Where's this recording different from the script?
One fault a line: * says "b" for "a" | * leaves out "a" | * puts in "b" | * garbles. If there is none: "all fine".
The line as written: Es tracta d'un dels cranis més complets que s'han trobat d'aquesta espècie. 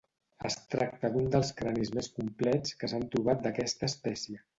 all fine